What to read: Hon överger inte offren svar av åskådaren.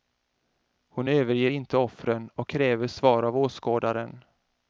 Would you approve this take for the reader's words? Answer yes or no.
no